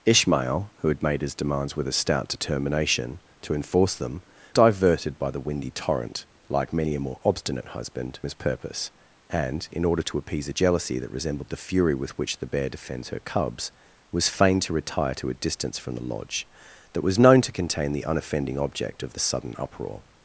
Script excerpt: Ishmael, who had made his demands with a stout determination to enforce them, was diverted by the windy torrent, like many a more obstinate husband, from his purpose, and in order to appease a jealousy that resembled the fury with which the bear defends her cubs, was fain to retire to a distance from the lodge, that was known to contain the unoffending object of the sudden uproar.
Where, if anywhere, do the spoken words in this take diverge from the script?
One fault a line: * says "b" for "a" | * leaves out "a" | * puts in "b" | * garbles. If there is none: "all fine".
* leaves out "was"
* leaves out "from"